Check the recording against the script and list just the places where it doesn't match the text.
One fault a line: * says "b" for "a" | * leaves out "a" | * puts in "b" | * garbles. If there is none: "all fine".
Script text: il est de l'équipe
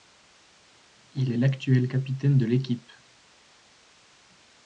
* puts in "l'actuel capitaine"